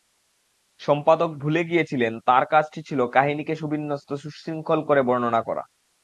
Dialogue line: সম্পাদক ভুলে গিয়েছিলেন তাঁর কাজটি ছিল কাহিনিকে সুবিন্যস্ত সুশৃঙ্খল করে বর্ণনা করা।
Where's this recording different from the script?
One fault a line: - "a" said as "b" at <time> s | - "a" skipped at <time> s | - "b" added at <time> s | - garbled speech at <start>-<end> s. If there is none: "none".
none